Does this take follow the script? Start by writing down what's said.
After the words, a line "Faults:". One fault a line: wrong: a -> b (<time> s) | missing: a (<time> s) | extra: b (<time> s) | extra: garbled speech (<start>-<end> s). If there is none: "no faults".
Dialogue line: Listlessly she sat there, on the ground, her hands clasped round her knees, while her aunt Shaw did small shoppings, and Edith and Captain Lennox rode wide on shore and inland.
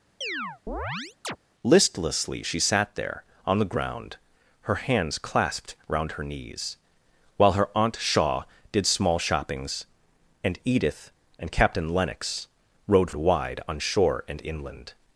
Listlessly she sat there, on the ground, her hands clasped round her knees, while her aunt Shaw did small shoppings, and Edith and Captain Lennox rode wide on shore and inland.
Faults:
no faults